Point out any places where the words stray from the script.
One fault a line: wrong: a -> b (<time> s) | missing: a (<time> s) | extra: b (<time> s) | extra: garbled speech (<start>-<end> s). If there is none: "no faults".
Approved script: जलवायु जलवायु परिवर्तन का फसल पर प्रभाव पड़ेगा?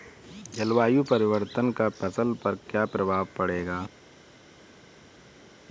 missing: जलवायु (1.0 s)
extra: क्या (2.7 s)